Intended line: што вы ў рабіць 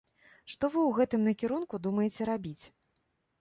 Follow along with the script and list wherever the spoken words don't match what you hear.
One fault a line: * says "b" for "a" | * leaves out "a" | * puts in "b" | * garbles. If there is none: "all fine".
* puts in "гэтым накірунку думаеце"